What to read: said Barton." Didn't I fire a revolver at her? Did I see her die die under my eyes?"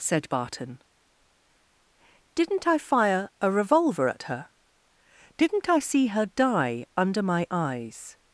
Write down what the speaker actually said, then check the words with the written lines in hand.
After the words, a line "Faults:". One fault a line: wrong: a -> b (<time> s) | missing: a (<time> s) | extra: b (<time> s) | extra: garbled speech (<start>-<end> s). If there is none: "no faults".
said Barton." Didn't I fire a revolver at her? Didn't I see her die under my eyes?"
Faults:
wrong: Did -> Didn't (5.4 s)
missing: die (6.9 s)